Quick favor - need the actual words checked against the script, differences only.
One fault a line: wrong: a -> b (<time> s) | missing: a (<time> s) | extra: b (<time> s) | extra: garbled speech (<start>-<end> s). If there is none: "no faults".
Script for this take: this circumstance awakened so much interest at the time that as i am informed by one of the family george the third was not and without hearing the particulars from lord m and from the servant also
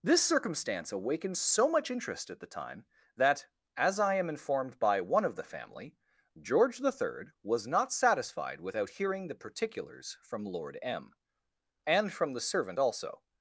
wrong: and -> satisfied (7.9 s)